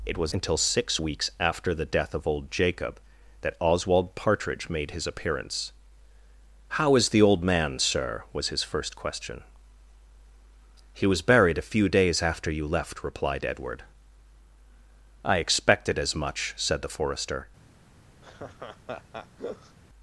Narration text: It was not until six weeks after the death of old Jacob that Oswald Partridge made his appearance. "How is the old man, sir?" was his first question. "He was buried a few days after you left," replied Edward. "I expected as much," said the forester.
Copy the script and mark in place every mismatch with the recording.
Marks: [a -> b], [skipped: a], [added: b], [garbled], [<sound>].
It was [skipped: not] until six weeks after the death of old Jacob that Oswald Partridge made his appearance. "How is the old man, sir?" was his first question. "He was buried a few days after you left," replied Edward. "I expected as much," said the forester. [laugh]